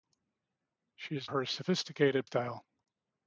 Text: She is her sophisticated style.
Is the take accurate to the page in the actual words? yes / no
yes